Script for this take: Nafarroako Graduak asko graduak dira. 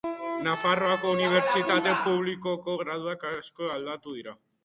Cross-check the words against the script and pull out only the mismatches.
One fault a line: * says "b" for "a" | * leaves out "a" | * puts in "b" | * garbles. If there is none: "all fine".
* puts in "Unibertsitate Publikoko"
* says "aldatu" for "graduak"